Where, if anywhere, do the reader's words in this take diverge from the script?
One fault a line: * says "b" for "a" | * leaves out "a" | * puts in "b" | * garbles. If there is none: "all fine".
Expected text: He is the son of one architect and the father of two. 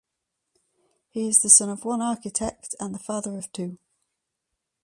all fine